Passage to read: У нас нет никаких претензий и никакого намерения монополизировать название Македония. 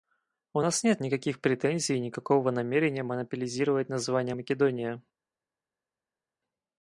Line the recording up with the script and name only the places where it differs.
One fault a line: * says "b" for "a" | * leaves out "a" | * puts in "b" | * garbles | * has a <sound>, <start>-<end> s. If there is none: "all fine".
all fine